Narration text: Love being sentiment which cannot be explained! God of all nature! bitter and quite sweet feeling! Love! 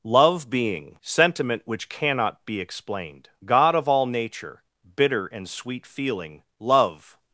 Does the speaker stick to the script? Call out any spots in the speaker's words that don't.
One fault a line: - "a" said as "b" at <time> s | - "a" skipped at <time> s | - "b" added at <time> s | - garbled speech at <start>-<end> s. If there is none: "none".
- "quite" skipped at 5.5 s